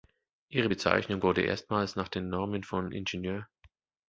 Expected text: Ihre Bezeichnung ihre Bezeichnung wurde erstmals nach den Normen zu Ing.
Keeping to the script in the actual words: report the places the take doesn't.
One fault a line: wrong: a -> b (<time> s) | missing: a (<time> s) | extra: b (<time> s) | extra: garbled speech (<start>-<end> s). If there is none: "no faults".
missing: ihre Bezeichnung (1.2 s)
wrong: zu -> von (2.6 s)